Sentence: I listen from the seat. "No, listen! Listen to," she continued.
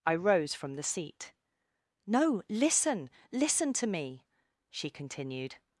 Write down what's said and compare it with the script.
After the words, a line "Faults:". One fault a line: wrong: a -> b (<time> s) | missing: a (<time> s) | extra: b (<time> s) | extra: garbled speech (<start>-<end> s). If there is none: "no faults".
I rose from the seat. "No, listen! Listen to me," she continued.
Faults:
wrong: listen -> rose (0.1 s)
extra: me (3.9 s)